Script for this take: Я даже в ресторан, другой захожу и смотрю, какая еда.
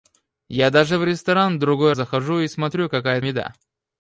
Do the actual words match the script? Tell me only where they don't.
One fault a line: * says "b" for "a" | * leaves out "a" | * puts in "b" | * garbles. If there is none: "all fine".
all fine